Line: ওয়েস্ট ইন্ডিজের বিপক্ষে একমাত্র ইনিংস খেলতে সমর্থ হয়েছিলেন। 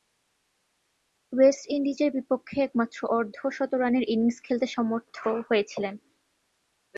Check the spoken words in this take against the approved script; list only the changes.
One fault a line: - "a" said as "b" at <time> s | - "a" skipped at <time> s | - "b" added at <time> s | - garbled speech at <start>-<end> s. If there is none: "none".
- "অর্ধ শতরানের" added at 3.2 s